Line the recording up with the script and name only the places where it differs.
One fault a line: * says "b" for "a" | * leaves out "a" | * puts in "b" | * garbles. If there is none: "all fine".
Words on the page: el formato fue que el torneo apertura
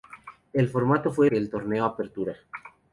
all fine